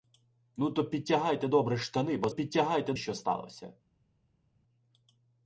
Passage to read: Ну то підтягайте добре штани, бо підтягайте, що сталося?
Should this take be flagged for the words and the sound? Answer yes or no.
no